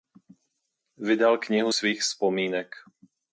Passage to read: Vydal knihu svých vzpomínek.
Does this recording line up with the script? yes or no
yes